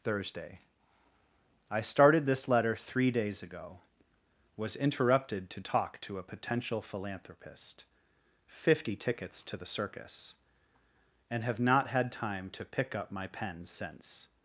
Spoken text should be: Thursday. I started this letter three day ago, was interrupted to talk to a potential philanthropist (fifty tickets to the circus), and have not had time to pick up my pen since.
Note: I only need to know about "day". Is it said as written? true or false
false